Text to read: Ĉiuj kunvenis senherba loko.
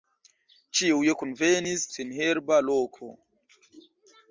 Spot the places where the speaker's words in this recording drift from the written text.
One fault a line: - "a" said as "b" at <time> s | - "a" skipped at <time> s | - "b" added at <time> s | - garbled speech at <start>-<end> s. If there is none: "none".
none